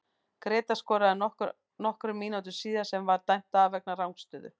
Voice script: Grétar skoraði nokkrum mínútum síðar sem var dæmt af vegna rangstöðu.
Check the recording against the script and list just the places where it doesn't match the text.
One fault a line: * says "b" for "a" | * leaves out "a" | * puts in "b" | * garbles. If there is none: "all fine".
all fine